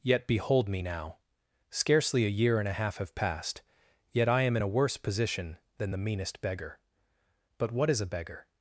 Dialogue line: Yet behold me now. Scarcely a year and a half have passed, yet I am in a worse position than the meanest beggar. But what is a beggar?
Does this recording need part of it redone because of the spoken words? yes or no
no